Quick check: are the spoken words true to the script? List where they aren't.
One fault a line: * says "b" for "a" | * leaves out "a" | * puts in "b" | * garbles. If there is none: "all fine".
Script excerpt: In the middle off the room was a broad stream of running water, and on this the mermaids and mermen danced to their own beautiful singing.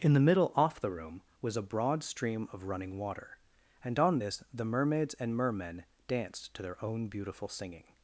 all fine